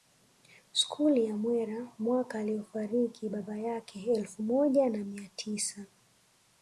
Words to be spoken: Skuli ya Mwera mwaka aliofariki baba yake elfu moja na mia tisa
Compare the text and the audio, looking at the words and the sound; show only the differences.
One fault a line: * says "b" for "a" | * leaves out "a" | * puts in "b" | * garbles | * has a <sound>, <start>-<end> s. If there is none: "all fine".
all fine